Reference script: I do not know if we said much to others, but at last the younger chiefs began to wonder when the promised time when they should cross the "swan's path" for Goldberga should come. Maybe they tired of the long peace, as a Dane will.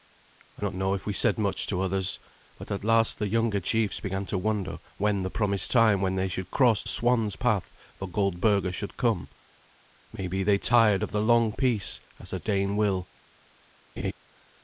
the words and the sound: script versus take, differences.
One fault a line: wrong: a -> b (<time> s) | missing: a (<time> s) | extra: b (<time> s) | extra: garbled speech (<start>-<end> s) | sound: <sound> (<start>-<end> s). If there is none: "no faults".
missing: do (0.7 s)
missing: the (6.8 s)
sound: laugh (14.0-14.1 s)